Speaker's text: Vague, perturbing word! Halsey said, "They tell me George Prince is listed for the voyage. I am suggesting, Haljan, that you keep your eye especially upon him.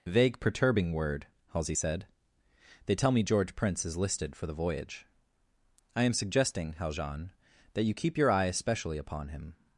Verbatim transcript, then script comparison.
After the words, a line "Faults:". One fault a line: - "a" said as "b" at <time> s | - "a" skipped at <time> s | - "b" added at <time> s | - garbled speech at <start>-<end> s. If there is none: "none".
Vague, perturbing word! Halsey said, "They tell me George Prince is listed for the voyage. I am suggesting, Haljan, that you keep your eye especially upon him.
Faults:
none